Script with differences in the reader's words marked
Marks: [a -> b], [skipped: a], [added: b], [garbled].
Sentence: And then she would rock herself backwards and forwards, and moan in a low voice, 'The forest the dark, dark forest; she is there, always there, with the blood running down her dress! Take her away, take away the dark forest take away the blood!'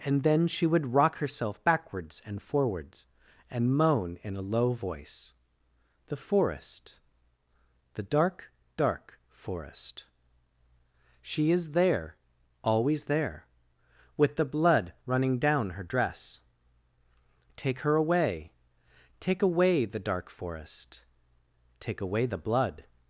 And then she would rock herself backwards and forwards, and moan in a low voice, 'The forest the dark, dark forest; she is there, always there, with the blood running down her dress! Take her away, take away the dark forest take away the blood!'